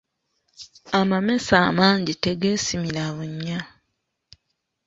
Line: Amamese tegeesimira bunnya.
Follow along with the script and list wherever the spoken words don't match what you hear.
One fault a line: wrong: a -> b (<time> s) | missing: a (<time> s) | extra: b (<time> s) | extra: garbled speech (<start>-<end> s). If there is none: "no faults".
extra: amangi (1.7 s)